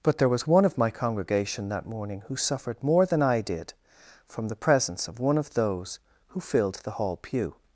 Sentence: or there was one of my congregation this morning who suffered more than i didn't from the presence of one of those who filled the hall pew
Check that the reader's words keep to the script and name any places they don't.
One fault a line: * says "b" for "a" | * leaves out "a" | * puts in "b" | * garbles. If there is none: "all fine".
* says "but" for "or"
* says "that" for "this"
* says "did" for "didn't"